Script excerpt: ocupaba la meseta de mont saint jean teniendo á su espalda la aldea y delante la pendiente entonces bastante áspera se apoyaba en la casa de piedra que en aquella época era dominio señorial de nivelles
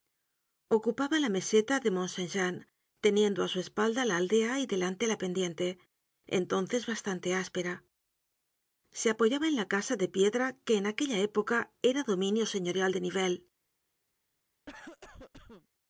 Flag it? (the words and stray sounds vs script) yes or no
yes